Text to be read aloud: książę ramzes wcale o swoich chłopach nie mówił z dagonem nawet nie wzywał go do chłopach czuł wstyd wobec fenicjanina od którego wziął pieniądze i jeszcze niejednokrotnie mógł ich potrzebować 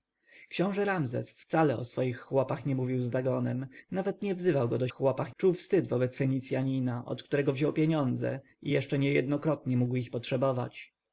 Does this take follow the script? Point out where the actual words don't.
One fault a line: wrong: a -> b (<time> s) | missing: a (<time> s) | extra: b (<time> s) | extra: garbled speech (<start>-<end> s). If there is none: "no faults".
no faults